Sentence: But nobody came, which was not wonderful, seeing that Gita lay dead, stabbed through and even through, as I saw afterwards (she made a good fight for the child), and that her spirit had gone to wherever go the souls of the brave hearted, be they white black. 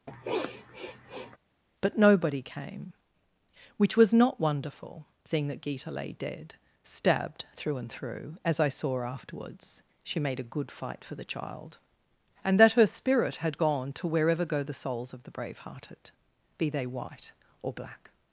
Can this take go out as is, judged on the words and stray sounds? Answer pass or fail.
fail